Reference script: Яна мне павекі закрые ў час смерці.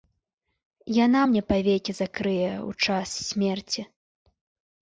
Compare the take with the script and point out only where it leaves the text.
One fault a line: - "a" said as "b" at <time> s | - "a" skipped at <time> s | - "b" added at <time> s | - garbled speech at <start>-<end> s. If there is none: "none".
none